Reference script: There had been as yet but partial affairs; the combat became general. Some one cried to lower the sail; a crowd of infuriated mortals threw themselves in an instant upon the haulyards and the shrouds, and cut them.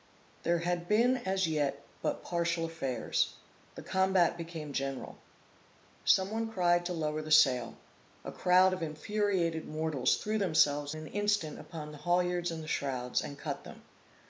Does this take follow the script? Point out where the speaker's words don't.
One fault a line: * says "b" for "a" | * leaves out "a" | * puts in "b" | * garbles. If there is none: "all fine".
* leaves out "in"